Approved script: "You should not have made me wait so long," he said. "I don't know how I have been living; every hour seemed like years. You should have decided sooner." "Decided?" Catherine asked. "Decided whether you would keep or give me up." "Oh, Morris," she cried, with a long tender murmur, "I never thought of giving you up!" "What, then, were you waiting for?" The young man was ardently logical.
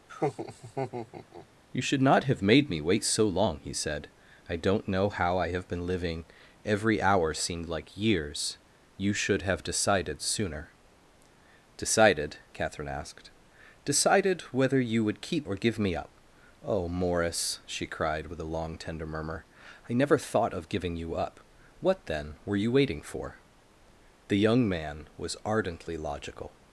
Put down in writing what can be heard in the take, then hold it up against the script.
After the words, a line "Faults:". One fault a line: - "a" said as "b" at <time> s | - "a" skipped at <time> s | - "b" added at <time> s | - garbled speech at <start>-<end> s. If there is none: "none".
"You should not have made me wait so long," he said. "I don't know how I have been living; every hour seemed like years. You should have decided sooner." "Decided?" Catherine asked. "Decided whether you would keep or give me up." "Oh, Morris," she cried, with a long tender murmur, "I never thought of giving you up!" "What, then, were you waiting for?" The young man was ardently logical.
Faults:
none